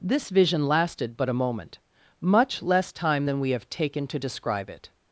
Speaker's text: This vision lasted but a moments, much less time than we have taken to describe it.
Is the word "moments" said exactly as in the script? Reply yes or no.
no